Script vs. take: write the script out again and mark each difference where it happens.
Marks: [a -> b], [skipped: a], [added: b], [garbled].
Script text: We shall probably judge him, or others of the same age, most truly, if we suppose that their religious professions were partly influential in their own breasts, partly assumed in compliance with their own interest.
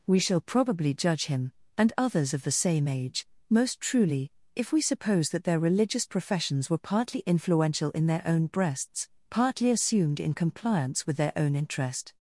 We shall probably judge him, [or -> and] others of the same age, most truly, if we suppose that their religious professions were partly influential in their own breasts, partly assumed in compliance with their own interest.